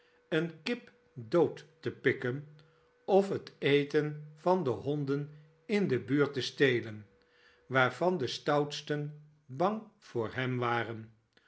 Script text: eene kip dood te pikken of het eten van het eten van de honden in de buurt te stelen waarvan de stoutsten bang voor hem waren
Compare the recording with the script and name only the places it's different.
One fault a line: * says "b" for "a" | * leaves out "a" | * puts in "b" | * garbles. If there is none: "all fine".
* leaves out "het eten van"